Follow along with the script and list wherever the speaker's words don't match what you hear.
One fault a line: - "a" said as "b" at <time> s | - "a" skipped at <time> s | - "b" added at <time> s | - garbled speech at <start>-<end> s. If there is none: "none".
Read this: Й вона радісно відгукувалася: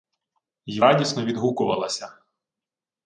- "вона" skipped at 0.8 s